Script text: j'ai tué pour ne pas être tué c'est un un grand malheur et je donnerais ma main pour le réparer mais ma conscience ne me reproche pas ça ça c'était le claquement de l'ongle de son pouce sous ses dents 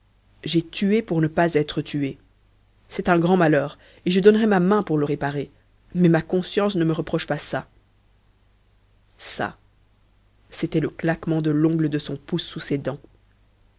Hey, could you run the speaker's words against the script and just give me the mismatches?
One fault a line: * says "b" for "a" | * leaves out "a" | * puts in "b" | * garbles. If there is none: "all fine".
* leaves out "un"